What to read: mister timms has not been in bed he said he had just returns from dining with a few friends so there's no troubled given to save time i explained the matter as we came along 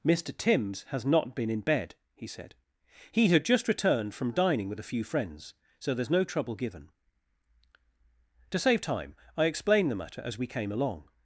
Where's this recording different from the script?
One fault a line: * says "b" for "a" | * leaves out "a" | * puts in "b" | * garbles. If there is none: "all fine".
* says "returned" for "returns"
* says "trouble" for "troubled"